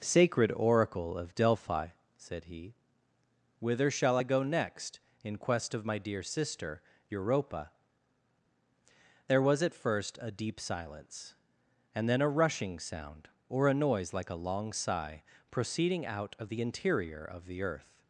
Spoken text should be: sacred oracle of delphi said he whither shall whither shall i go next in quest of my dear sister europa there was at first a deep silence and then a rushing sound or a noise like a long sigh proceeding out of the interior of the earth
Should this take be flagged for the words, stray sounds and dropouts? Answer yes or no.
yes